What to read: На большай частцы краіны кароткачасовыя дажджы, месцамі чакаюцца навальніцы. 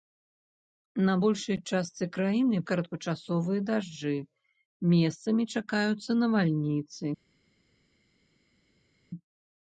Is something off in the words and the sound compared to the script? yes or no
no